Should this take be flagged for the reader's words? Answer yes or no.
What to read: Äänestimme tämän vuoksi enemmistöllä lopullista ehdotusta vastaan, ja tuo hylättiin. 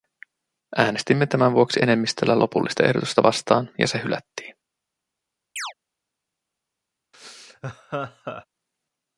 yes